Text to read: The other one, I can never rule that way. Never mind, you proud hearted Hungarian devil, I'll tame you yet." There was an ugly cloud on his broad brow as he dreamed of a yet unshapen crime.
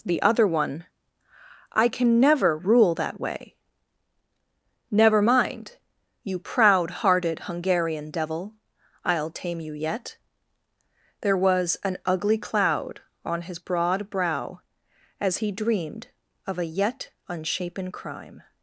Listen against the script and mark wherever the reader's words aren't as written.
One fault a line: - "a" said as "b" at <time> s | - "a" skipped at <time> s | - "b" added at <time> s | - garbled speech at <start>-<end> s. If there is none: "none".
none